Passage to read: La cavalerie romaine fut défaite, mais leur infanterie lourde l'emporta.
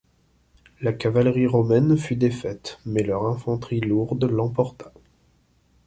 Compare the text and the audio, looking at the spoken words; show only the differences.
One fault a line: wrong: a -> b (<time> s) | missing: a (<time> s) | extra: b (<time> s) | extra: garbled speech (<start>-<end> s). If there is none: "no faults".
no faults